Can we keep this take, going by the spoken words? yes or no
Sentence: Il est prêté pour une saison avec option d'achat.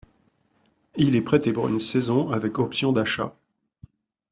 yes